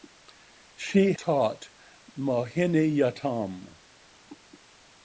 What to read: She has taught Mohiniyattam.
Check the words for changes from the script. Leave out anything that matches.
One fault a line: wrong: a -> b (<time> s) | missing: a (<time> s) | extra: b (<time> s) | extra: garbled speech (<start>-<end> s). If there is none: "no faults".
missing: has (1.1 s)